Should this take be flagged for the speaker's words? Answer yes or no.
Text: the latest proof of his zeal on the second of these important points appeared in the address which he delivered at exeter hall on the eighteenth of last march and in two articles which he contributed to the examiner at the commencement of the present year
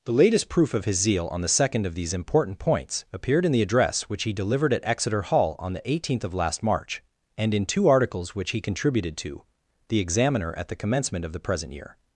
no